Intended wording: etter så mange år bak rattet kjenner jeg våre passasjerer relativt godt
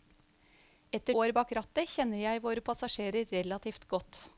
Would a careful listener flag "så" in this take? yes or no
yes